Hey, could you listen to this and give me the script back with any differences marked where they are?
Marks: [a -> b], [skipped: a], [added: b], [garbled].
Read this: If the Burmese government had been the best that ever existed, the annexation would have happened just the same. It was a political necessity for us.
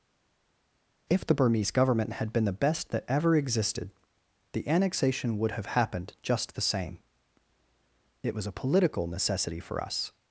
If the Burmese government had been the best that ever existed, the annexation would have happened just the same. It was a political necessity for us.